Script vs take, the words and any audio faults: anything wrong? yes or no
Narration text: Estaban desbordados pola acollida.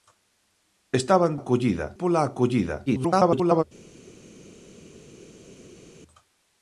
yes